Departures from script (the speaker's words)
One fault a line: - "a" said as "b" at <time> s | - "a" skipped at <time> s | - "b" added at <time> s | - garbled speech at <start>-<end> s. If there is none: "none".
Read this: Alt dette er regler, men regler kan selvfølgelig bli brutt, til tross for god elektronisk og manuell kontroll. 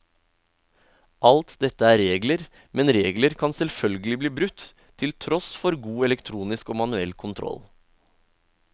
none